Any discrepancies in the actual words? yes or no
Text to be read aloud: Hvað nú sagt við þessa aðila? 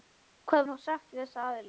no